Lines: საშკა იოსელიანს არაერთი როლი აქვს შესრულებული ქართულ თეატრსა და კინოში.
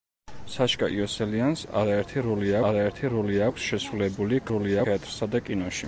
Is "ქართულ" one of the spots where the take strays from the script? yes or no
yes